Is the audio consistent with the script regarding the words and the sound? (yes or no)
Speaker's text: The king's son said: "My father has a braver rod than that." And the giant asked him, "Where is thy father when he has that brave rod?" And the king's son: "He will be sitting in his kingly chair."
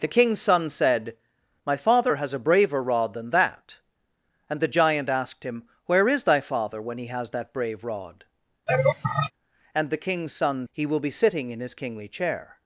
no